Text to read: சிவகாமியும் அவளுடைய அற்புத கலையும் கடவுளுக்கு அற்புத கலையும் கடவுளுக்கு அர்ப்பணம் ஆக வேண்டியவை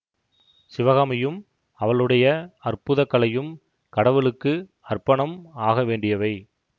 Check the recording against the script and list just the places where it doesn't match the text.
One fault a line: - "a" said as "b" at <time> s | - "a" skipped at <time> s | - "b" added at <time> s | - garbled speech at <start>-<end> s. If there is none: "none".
- "அற்புத கலையும் கடவுளுக்கு" skipped at 4.5 s